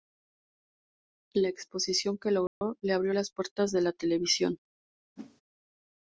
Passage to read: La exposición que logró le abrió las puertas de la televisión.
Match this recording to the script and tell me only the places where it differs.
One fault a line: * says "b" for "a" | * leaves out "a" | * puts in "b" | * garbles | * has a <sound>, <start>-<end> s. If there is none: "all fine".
* has a dropout, 2.5-2.6 s
* has a whoosh, 5.2-5.4 s